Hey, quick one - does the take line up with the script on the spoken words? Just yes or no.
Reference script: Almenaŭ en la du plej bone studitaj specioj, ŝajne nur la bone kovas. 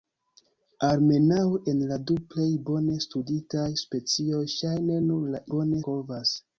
yes